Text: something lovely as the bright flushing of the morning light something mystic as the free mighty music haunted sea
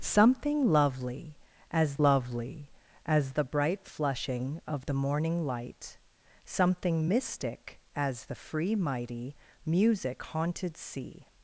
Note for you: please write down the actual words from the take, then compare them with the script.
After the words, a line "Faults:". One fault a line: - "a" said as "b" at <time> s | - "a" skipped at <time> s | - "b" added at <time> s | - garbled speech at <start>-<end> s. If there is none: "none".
something lovely as lovely as the bright flushing of the morning light something mystic as the free mighty music haunted sea
Faults:
- "lovely as" added at 2.0 s